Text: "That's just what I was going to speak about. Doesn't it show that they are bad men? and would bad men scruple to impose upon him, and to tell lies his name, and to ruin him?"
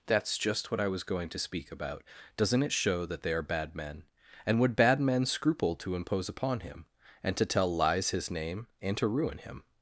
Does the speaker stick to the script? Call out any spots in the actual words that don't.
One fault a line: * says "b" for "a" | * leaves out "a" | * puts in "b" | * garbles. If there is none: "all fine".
all fine